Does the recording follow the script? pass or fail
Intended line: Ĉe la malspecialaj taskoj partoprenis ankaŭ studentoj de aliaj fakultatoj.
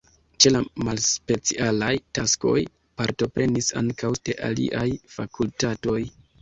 fail